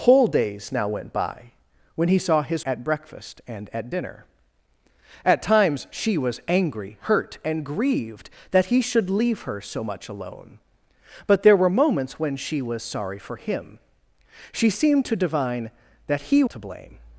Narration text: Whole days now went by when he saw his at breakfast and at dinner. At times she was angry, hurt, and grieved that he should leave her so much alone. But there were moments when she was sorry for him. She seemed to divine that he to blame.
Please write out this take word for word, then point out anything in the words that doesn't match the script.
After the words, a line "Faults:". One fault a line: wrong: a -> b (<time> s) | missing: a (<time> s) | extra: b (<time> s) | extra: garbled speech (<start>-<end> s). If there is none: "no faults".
Whole days now went by when he saw his at breakfast and at dinner. At times she was angry, hurt, and grieved that he should leave her so much alone. But there were moments when she was sorry for him. She seemed to divine that he to blame.
Faults:
no faults